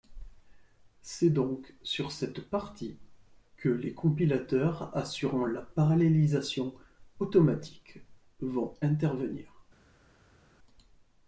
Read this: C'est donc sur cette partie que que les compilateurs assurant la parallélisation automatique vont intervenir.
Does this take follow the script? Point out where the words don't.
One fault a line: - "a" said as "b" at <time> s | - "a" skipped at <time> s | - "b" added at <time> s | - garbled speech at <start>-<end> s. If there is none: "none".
- "que" skipped at 3.7 s